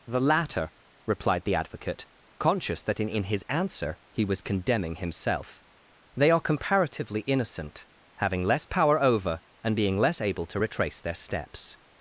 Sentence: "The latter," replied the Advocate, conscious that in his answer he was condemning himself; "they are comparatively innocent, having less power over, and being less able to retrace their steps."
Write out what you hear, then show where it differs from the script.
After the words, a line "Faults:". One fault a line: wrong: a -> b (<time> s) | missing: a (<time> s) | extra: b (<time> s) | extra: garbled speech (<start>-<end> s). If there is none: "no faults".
"The latter," replied the Advocate, conscious that in in his answer he was condemning himself; "they are comparatively innocent, having less power over, and being less able to retrace their steps."
Faults:
extra: in (3.1 s)